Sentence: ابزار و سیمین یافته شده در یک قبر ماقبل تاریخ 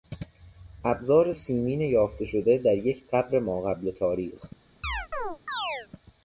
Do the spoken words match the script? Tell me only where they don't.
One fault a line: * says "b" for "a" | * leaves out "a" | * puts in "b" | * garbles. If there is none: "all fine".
all fine